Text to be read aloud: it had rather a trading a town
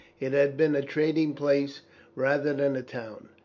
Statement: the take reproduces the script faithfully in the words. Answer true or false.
false